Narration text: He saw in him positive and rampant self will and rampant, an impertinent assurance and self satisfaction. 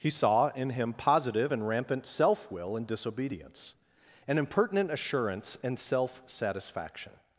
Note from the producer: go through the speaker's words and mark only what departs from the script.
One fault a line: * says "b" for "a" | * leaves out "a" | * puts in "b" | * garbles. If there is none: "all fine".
* says "disobedience" for "rampant"